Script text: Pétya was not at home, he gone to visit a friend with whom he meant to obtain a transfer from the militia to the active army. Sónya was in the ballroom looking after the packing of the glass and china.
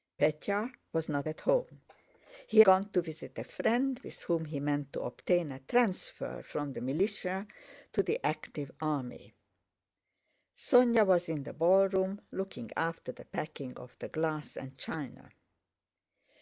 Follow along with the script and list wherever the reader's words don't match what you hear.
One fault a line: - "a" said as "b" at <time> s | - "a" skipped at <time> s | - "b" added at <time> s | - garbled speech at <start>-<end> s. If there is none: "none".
none